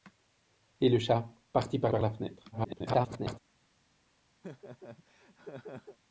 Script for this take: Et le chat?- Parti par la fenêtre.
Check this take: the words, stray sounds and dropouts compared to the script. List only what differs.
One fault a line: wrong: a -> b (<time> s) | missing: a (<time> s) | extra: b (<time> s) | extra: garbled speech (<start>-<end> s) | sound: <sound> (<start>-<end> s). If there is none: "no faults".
extra: par (1.9 s)
extra: garbled speech (2.5-3.4 s)
sound: laugh (4.4-6.0 s)